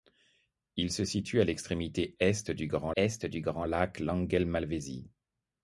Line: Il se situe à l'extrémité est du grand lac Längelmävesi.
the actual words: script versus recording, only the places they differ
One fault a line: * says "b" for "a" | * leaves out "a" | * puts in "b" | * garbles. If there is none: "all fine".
* puts in "est du grand"